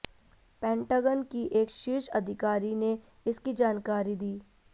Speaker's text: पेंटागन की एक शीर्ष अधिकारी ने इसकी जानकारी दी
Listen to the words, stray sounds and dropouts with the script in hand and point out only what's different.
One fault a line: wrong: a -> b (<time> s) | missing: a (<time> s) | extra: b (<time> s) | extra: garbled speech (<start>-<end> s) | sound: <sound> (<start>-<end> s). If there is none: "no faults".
no faults